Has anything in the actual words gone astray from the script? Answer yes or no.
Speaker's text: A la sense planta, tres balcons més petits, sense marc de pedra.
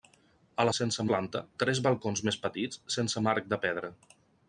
no